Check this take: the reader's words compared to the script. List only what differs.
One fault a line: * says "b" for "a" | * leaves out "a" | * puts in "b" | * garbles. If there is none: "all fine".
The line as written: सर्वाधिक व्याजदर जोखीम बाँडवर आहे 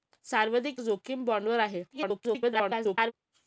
* leaves out "व्याजदर"
* garbles